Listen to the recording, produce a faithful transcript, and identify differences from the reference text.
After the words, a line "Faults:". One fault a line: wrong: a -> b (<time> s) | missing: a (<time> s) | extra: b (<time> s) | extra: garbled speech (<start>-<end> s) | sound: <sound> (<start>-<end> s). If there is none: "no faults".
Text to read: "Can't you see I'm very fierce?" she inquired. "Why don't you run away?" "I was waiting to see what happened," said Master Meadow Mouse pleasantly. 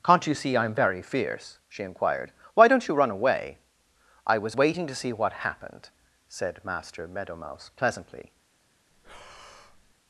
"Can't you see I'm very fierce?" she inquired. "Why don't you run away?" "I was waiting to see what happened," said Master Meadow Mouse pleasantly.
Faults:
sound: breath (8.9-10.0 s)